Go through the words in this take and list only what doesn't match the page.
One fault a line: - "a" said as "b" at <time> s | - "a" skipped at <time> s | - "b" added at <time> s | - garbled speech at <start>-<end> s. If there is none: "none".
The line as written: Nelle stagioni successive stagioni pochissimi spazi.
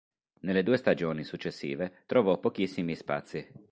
- "due" added at 0.6 s
- "stagioni" said as "trovò" at 2.1 s